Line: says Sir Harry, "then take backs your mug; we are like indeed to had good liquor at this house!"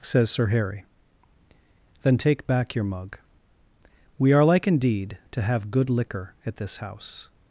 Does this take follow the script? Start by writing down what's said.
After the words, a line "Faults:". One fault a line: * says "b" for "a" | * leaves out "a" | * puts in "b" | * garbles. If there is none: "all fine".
says Sir Harry, "then take back your mug; we are like indeed to have good liquor at this house!"
Faults:
* says "back" for "backs"
* says "have" for "had"